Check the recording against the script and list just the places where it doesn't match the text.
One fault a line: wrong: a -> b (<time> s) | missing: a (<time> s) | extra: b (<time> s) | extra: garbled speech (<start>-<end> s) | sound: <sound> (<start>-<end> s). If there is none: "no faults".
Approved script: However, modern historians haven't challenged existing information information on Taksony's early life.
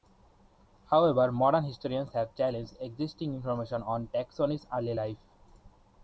wrong: haven't -> have (2.1 s)
missing: information (3.8 s)